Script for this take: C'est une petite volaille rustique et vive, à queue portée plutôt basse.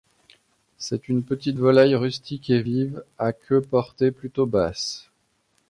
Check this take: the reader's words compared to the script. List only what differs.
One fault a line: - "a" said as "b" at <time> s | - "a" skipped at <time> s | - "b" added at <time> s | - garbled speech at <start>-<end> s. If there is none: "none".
none